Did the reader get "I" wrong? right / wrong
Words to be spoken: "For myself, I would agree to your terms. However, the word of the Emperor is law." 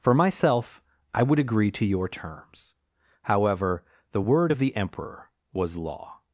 right